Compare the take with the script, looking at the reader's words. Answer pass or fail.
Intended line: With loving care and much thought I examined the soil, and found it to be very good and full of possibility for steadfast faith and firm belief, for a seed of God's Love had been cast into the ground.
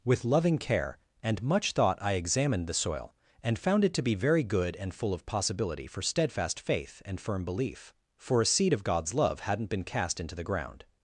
fail